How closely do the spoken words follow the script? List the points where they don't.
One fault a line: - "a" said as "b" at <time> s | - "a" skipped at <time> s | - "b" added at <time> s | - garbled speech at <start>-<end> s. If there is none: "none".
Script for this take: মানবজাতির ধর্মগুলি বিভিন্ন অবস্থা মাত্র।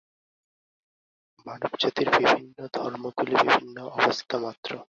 - "বিভিন্ন" added at 2.2 s